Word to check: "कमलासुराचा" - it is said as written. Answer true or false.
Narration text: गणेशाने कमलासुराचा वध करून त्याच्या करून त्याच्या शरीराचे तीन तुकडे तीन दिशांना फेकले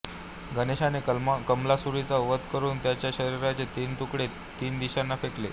true